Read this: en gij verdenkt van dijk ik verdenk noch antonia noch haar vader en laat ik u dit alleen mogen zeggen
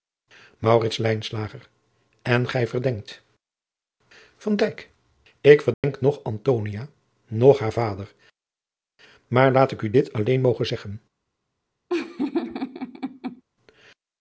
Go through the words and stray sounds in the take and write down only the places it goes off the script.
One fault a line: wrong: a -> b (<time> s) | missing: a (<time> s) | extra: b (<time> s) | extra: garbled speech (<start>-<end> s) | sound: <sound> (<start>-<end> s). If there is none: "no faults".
sound: dropout (5.7-5.8 s)
wrong: en -> maar (9.3 s)
sound: laugh (11.9-13.4 s)